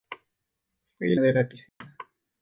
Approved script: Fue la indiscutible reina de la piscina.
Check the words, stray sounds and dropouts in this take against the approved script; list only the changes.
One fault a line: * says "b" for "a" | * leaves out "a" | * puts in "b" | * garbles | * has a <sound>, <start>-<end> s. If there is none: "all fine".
* leaves out "la indiscutible reina"
* has a dropout, 1.7-1.8 s